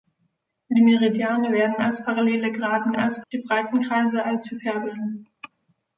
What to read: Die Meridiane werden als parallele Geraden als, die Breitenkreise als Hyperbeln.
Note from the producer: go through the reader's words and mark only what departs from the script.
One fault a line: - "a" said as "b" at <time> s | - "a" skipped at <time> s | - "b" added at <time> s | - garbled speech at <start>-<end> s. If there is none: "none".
none